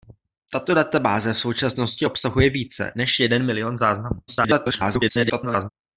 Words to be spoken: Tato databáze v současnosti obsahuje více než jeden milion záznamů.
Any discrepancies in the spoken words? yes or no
yes